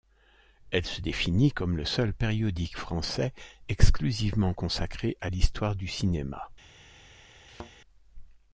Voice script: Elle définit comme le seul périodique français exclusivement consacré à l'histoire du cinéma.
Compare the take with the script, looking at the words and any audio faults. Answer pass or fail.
fail